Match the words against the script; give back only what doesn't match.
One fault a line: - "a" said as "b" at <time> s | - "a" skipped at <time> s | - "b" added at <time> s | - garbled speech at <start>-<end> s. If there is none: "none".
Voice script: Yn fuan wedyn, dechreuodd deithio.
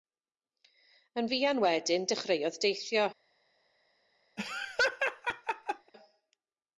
none